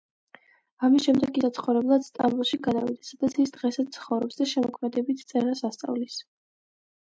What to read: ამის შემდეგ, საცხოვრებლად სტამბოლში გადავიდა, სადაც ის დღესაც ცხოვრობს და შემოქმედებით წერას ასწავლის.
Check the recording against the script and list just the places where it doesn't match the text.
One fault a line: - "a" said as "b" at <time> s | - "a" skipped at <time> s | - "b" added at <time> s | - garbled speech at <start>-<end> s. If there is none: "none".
none